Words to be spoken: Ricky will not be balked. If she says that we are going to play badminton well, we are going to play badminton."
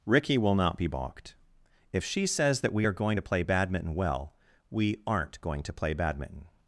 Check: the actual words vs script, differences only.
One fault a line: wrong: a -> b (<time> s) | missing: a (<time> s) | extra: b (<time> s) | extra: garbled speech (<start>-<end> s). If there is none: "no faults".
wrong: are -> aren't (5.1 s)